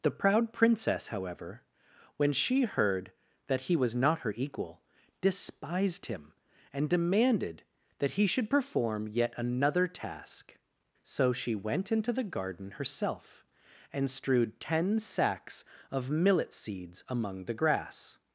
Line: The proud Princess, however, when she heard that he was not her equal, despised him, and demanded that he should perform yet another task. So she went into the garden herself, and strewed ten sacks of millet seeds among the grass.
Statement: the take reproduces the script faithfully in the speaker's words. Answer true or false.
true